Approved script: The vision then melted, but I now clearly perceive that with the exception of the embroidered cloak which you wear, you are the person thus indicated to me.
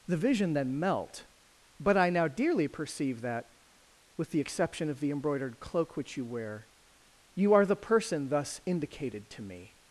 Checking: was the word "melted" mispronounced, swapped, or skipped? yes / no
yes